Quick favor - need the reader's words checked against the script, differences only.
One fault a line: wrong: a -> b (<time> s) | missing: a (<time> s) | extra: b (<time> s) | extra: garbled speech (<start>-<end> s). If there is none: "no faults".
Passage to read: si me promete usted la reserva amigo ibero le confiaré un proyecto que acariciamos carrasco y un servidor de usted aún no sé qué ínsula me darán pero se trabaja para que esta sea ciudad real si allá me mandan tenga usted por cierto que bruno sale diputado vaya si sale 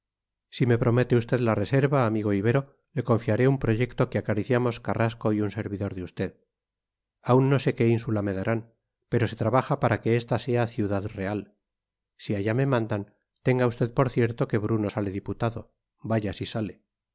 no faults